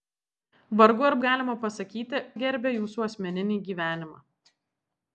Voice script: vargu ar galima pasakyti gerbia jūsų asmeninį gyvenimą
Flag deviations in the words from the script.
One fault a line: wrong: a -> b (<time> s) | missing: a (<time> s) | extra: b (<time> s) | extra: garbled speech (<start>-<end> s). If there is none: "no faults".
no faults